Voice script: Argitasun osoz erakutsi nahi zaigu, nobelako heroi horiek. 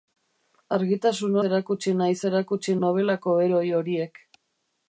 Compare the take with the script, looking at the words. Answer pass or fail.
fail